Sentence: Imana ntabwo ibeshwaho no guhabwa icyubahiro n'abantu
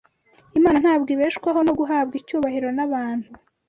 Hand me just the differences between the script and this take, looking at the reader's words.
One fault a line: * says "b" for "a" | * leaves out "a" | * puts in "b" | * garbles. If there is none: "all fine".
all fine